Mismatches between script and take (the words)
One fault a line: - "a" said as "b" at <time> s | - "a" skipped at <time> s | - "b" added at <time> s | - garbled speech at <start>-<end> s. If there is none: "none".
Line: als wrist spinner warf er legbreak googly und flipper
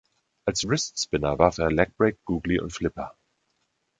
none